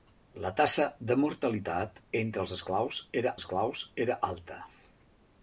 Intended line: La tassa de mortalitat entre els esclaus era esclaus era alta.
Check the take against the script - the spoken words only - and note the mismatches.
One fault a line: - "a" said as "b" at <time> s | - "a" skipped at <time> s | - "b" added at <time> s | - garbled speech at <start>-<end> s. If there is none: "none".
none